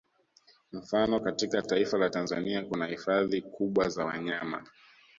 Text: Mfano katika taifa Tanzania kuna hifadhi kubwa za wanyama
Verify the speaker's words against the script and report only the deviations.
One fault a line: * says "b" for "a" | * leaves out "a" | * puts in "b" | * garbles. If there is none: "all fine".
* puts in "la"